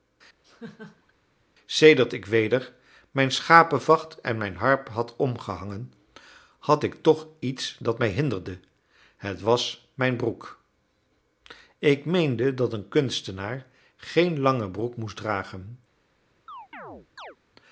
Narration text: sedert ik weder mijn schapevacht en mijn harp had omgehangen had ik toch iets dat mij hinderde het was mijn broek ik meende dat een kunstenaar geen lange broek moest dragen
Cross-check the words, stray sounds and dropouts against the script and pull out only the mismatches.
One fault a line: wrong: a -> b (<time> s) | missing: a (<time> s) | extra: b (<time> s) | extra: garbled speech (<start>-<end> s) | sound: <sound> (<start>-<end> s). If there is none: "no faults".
sound: laugh (0.4-1.1 s)
sound: chirp (16.5-17.4 s)